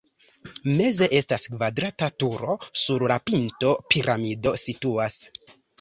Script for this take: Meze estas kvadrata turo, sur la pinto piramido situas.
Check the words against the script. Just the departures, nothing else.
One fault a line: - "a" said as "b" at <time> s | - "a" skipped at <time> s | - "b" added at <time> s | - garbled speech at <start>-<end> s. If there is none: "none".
none